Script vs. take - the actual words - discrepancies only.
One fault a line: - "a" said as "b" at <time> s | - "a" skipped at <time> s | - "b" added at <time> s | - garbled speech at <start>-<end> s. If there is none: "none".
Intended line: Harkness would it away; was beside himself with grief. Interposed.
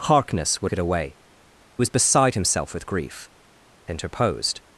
none